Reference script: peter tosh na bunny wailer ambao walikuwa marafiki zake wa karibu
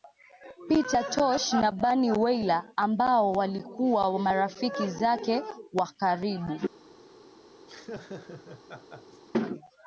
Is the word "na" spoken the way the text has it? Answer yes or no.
yes